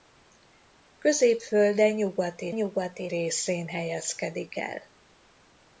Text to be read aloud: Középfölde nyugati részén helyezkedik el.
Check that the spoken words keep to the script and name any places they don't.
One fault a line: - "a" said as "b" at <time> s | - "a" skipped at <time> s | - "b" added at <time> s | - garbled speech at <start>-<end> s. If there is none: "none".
- "nyugati" added at 2.5 s